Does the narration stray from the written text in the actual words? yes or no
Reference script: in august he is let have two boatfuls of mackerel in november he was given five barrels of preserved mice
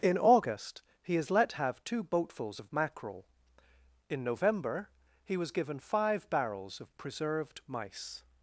no